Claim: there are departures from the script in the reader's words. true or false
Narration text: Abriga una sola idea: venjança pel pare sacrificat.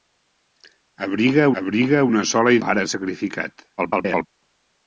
true